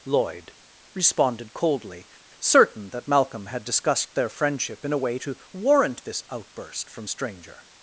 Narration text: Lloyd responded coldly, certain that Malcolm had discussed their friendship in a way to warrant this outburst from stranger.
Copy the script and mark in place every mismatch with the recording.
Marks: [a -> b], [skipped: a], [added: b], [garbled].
Lloyd responded coldly, certain that Malcolm had discussed their friendship in a way to warrant this outburst from stranger.